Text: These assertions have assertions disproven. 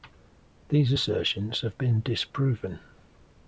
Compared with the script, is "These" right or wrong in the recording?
right